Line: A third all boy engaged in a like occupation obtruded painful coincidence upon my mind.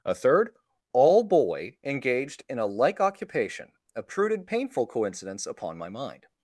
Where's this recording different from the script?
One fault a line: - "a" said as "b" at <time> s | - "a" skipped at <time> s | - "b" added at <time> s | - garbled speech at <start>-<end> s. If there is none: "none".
none